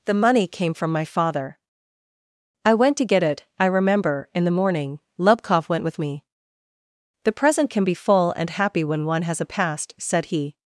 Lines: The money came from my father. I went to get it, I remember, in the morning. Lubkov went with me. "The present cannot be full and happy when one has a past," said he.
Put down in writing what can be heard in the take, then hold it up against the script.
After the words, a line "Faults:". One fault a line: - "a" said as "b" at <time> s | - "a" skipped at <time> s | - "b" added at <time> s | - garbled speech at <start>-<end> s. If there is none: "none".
The money came from my father. I went to get it, I remember, in the morning. Lubkov went with me. "The present can be full and happy when one has a past," said he.
Faults:
- "cannot" said as "can" at 7.7 s